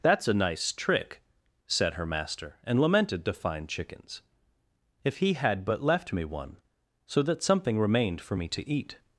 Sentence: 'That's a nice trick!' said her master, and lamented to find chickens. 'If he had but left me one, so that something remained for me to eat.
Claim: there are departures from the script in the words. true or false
false